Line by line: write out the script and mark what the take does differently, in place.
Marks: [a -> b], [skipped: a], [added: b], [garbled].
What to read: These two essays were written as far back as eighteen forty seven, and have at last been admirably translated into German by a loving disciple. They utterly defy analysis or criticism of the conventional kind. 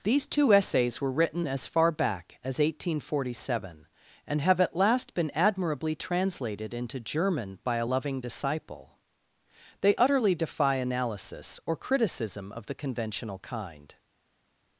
These two essays were written as far back as eighteen forty seven, and have at last been admirably translated into German by a loving disciple. They utterly defy analysis or criticism of the conventional kind.